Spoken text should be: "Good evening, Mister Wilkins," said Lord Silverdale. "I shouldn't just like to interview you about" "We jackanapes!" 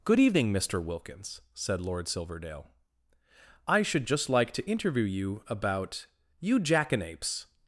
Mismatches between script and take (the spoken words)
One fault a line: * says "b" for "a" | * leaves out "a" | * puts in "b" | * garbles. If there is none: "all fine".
* says "should" for "shouldn't"
* says "You" for "We"